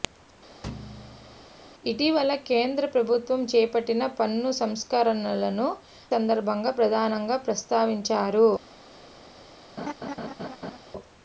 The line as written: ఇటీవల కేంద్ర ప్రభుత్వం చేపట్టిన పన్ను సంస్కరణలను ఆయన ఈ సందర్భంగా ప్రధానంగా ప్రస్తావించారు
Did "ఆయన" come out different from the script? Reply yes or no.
yes